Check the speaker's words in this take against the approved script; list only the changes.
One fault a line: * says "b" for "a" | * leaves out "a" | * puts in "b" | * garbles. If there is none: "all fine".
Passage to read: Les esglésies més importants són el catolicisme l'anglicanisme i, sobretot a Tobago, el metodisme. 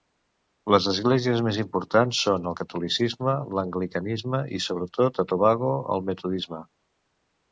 all fine